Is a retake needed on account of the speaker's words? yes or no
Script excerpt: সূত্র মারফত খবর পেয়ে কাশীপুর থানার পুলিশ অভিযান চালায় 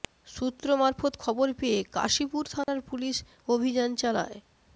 no